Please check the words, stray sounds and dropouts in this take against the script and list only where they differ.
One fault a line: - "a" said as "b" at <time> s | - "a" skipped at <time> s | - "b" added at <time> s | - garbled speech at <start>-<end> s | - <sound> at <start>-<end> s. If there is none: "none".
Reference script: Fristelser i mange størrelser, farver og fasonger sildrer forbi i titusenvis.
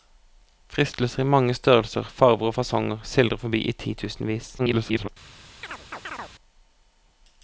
- garbled speech at 4.6-5.1 s
- chirp at 5.6-6.3 s